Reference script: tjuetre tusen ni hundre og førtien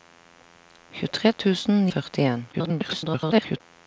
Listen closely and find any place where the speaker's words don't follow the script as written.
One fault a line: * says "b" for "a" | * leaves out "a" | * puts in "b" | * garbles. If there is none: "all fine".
* leaves out "ni hundre"
* garbles